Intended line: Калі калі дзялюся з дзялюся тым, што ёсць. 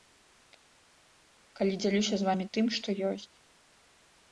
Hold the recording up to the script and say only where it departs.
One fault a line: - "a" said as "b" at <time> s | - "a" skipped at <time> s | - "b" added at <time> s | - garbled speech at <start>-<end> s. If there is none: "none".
- "калі" skipped at 1.7 s
- "дзялюся" said as "вамі" at 2.3 s